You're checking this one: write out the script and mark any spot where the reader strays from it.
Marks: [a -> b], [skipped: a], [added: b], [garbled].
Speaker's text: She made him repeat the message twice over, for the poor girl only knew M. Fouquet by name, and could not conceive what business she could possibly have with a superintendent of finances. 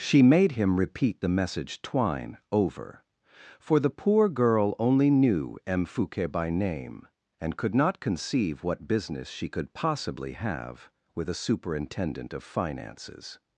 She made him repeat the message [twice -> twine] over, for the poor girl only knew M. Fouquet by name, and could not conceive what business she could possibly have with a superintendent of finances.